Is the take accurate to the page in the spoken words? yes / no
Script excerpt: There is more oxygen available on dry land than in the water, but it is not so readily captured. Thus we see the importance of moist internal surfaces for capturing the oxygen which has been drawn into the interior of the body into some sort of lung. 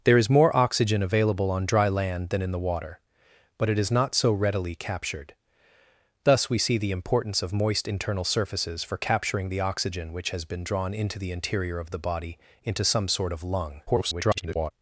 no